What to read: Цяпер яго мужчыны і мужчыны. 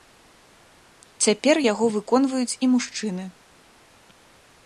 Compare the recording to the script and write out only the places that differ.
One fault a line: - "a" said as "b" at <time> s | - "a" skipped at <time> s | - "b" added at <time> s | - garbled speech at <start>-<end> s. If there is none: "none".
- "мужчыны" said as "выконваюць" at 2.0 s